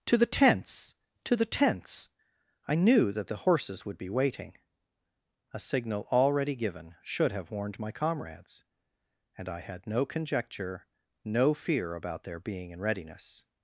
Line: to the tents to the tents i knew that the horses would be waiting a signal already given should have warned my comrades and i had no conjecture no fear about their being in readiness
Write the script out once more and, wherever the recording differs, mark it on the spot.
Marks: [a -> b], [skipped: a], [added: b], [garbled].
to the tents to the tents i knew that the horses would be waiting a signal already given should have warned my comrades and i had no conjecture no fear about their being in readiness